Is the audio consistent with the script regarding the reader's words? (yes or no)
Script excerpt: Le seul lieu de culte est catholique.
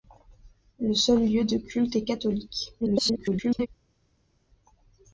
no